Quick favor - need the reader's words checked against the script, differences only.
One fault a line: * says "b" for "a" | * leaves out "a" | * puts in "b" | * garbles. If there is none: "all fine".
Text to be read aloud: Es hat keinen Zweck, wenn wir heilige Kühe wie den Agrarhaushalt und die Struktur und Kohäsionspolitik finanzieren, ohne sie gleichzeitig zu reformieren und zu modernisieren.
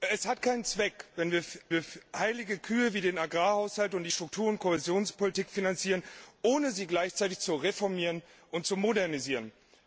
* puts in "wir"